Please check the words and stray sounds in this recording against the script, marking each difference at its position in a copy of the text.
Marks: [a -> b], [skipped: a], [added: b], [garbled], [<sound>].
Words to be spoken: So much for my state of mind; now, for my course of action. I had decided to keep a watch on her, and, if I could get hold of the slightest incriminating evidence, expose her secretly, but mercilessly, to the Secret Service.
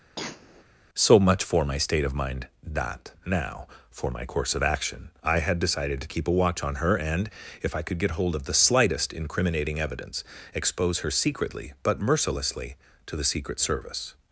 [cough] So much for my state of mind; [added: that] now, for my course of action. I had decided to keep a watch on her, and, if I could get hold of the slightest incriminating evidence, expose her secretly, but mercilessly, to the Secret Service.